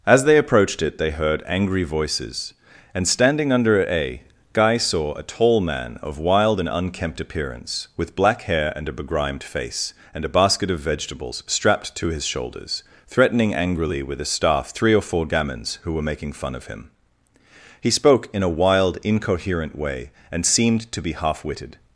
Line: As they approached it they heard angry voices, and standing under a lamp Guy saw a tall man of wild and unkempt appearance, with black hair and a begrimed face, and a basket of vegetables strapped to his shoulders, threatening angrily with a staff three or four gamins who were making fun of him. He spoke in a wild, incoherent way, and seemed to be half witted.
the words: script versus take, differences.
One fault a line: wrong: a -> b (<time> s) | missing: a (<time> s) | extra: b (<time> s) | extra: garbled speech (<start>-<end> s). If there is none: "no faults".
missing: lamp (4.2 s)